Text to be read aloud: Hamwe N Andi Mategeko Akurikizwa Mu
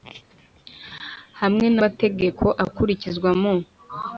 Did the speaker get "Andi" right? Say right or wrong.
wrong